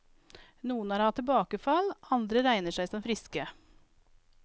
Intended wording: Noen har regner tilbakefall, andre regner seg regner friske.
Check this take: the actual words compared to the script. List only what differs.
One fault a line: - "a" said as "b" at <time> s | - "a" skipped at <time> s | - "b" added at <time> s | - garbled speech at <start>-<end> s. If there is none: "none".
- "regner" said as "hatt" at 1.0 s
- "regner" said as "som" at 2.9 s